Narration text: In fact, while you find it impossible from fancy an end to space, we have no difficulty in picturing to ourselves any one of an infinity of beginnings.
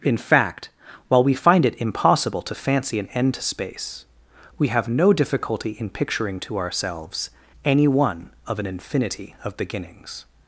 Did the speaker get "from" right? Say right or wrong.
wrong